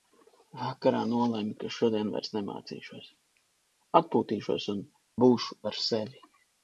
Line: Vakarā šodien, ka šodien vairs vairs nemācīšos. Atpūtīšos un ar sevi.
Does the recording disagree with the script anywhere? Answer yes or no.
yes